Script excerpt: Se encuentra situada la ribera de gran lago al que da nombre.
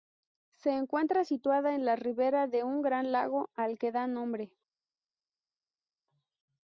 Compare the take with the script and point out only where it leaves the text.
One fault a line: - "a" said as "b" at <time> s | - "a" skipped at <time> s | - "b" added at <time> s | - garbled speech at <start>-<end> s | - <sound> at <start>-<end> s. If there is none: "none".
- "en" added at 1.7 s
- "un" added at 2.6 s